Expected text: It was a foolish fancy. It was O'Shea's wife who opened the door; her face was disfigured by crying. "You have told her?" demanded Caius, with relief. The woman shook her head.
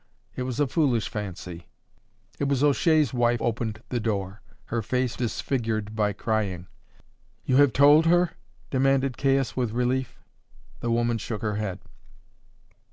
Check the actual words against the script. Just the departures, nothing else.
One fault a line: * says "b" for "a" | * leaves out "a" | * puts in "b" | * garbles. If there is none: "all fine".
* leaves out "who"
* leaves out "was"